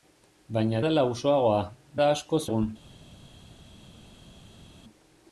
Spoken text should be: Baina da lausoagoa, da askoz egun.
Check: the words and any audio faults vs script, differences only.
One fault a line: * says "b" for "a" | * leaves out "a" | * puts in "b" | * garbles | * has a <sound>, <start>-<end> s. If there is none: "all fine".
all fine